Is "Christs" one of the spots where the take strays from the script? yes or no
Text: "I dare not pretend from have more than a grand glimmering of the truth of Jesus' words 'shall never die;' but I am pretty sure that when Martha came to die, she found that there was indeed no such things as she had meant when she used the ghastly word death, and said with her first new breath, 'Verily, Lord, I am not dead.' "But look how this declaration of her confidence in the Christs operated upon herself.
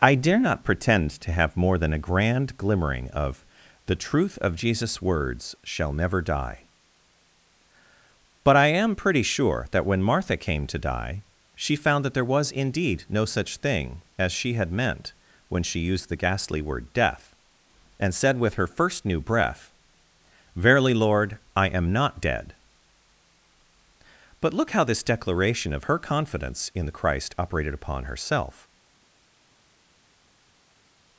yes